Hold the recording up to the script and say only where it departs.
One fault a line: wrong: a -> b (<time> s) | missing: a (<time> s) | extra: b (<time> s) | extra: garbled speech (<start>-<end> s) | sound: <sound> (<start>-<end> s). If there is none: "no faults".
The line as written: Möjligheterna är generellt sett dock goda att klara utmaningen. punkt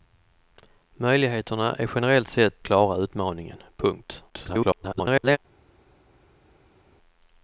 missing: dock goda att (2.6 s)
extra: garbled speech (4.3-5.4 s)